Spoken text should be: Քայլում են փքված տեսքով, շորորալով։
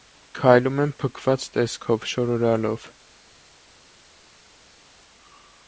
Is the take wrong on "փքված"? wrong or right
right